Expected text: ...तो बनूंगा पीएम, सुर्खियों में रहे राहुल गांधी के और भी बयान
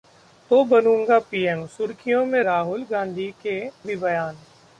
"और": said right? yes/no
no